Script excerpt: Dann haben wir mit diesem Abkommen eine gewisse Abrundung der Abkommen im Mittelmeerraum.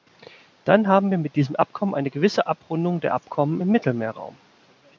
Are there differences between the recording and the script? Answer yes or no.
no